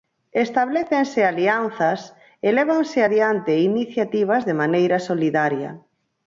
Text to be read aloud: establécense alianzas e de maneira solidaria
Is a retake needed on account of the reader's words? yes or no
yes